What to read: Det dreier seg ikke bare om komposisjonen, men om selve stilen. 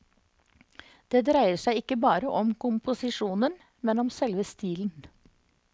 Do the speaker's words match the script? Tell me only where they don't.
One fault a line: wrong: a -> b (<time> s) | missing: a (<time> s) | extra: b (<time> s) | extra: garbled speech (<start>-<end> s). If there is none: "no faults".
no faults